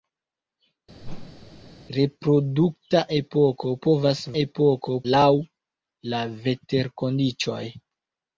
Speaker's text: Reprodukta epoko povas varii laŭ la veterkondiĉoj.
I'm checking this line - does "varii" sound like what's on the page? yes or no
no